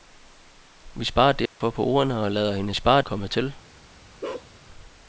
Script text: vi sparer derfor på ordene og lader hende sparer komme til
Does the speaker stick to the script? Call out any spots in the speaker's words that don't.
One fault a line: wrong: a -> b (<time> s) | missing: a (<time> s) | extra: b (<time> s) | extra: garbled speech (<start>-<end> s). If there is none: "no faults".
no faults